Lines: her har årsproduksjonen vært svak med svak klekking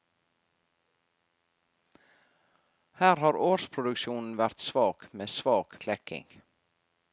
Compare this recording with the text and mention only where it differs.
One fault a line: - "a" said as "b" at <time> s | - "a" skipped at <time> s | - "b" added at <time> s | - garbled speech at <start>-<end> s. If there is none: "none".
none